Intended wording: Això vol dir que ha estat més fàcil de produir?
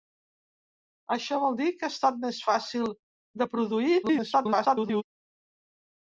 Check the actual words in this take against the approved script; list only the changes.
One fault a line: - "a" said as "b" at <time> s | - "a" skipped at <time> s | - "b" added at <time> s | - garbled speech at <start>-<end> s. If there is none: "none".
- garbled speech at 4.0-5.0 s